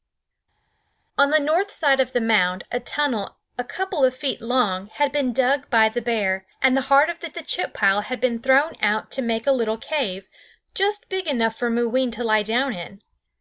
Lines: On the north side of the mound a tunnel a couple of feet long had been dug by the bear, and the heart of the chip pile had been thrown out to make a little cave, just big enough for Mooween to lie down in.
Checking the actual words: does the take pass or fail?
fail